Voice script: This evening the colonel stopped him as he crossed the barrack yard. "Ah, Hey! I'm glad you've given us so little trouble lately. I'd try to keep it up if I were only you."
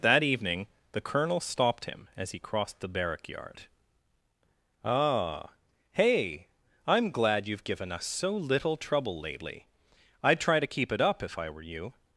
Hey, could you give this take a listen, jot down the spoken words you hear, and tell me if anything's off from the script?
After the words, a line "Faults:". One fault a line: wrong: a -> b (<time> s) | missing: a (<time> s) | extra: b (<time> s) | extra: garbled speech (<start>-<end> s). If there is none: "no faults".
That evening the colonel stopped him as he crossed the barrack yard. "Ah, Hey! I'm glad you've given us so little trouble lately. I'd try to keep it up if I were you."
Faults:
wrong: This -> That (0.0 s)
missing: only (11.6 s)